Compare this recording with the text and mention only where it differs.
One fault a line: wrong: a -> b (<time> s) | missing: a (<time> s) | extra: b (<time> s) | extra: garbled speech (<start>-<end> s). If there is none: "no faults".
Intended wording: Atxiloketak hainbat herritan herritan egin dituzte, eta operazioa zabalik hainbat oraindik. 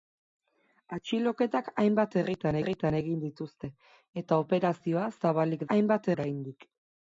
no faults